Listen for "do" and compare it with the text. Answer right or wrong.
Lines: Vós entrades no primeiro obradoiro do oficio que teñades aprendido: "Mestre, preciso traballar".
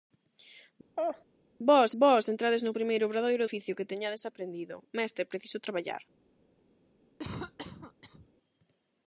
wrong